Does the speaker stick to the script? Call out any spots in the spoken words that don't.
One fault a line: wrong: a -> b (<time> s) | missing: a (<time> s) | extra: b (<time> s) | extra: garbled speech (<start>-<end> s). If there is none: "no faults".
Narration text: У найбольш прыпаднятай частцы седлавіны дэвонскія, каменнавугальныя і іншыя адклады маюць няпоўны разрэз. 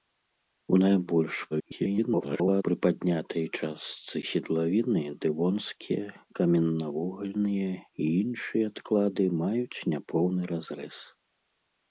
extra: garbled speech (1.5-2.6 s)